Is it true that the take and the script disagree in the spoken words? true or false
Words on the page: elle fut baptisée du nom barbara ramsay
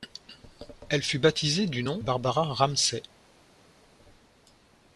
false